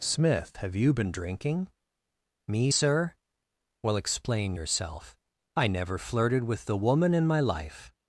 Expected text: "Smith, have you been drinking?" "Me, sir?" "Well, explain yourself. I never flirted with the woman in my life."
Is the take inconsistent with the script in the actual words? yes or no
no